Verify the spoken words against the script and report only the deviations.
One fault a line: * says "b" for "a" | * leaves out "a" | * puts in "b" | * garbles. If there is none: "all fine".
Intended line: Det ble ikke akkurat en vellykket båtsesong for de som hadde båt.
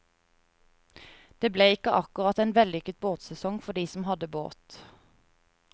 all fine